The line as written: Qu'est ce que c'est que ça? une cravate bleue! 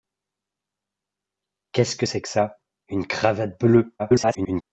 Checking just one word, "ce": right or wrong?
right